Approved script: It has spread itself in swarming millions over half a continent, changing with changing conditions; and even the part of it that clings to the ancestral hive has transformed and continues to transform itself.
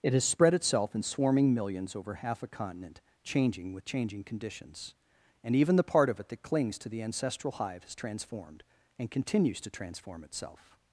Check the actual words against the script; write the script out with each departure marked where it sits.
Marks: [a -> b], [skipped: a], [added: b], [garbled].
It has spread itself in swarming millions over half a continent, changing with changing conditions; and even the part of it that clings to the ancestral hive has transformed and continues to transform itself.